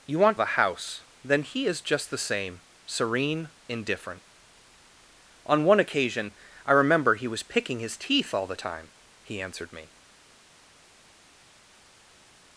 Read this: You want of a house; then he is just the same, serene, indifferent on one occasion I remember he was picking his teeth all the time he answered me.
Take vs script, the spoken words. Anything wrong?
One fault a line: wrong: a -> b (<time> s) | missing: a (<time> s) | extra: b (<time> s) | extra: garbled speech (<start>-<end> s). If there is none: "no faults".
no faults